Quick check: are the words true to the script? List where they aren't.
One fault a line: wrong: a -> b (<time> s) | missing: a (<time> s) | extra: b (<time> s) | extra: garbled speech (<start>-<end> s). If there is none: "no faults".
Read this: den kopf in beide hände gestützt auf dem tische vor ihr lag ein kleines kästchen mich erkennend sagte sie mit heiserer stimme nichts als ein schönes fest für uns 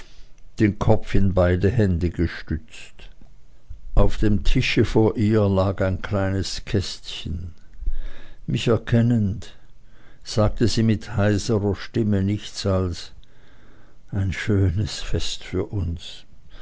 no faults